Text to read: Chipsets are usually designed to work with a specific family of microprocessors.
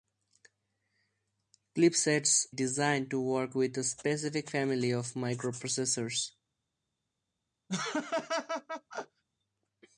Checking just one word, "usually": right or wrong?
wrong